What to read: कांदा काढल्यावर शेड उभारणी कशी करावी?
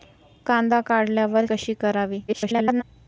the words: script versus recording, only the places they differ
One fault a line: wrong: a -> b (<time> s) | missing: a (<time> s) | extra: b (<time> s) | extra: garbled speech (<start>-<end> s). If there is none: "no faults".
missing: शेड उभारणी (1.4 s)
extra: garbled speech (2.3-2.8 s)